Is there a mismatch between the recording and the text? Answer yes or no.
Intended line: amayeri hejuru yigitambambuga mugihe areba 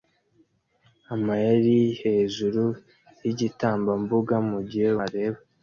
no